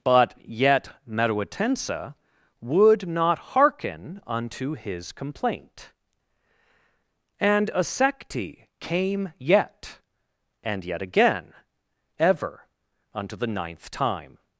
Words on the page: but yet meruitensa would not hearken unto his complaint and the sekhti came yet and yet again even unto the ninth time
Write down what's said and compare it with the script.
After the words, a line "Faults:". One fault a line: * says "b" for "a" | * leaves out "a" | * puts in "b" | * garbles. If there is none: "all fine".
but yet meruitensa would not hearken unto his complaint and a sekhti came yet and yet again ever unto the ninth time
Faults:
* says "a" for "the"
* says "ever" for "even"